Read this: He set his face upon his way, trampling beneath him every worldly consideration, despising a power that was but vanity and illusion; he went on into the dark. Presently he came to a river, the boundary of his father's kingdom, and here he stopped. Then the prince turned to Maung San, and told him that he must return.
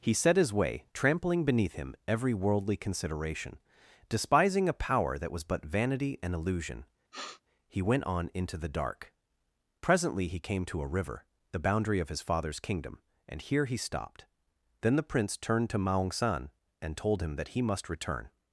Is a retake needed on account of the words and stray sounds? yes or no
yes